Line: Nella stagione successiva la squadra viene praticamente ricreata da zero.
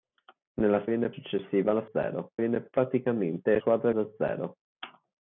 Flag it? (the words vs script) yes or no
yes